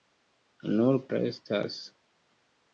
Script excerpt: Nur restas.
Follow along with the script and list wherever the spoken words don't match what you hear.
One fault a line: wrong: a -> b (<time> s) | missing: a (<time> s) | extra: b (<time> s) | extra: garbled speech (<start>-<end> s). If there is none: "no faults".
no faults